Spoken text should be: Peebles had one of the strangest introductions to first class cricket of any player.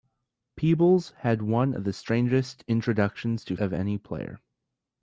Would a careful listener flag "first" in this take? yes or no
yes